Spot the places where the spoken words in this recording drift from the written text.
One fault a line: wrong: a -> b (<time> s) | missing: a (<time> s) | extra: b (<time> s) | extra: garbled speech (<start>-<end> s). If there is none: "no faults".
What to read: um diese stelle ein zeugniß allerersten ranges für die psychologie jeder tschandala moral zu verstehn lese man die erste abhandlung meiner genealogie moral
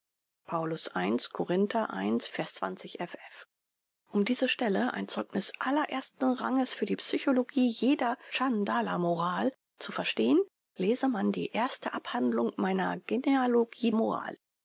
no faults